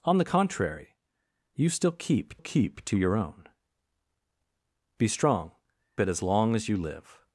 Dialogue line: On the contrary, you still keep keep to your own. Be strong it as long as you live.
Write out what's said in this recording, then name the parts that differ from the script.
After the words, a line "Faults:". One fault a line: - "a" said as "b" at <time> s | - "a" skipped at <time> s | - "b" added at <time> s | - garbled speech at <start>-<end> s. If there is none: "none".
On the contrary, you still keep keep to your own. Be strong it as long as you live.
Faults:
none